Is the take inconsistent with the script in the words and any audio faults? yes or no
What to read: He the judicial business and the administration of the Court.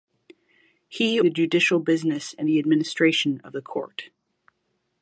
no